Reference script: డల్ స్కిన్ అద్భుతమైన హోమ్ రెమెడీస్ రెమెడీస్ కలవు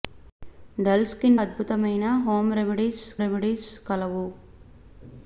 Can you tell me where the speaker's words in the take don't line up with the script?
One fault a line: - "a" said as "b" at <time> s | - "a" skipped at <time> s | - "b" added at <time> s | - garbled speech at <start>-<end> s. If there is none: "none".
none